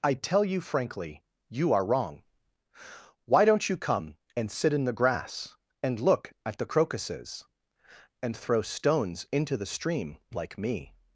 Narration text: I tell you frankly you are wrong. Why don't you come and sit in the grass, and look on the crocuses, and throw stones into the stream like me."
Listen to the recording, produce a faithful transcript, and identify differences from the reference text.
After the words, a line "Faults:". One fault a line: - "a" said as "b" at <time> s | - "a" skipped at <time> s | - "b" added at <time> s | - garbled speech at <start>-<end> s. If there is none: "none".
I tell you frankly you are wrong. Why don't you come and sit in the grass, and look at the crocuses, and throw stones into the stream like me."
Faults:
- "on" said as "at" at 6.4 s